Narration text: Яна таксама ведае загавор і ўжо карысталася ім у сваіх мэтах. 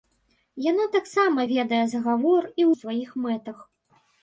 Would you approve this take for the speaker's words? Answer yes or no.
no